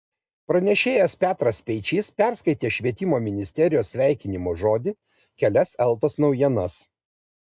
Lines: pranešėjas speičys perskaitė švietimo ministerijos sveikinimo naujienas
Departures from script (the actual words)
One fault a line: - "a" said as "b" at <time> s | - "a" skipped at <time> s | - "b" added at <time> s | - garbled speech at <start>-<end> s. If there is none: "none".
- "petras" added at 1.2 s
- "žodį kelias eltos" added at 4.6 s